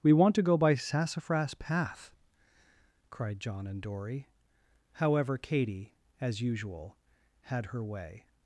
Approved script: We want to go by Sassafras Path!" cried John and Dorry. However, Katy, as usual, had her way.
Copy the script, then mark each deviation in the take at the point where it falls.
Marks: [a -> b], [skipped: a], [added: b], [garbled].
We want to go by Sassafras Path!" cried John and Dorry. However, Katy, as usual, had her way.